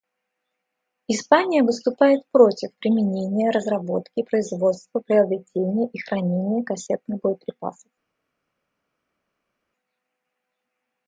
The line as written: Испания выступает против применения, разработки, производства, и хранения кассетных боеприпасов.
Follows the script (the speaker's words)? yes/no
no